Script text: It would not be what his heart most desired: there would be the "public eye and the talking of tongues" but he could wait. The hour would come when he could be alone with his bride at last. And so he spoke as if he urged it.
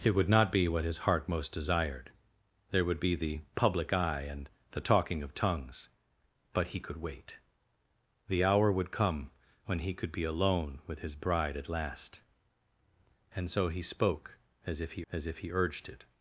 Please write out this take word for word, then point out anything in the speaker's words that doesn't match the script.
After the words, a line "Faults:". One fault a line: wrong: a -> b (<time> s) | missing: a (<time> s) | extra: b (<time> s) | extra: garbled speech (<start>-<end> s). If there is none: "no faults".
It would not be what his heart most desired: there would be the "public eye and the talking of tongues" but he could wait. The hour would come when he could be alone with his bride at last. And so he spoke as if he as if he urged it.
Faults:
extra: as if he (15.1 s)